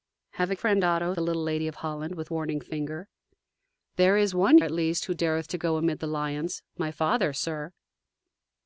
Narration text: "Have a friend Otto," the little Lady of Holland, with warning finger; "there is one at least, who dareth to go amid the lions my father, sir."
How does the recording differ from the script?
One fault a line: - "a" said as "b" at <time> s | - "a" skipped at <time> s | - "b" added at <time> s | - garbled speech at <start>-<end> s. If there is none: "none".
none